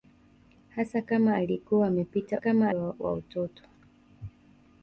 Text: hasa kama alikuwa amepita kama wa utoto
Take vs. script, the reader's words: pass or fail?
pass